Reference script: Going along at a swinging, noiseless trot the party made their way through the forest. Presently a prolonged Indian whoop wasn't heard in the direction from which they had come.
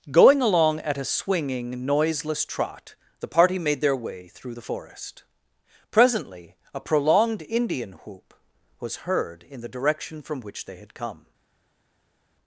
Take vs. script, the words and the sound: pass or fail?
fail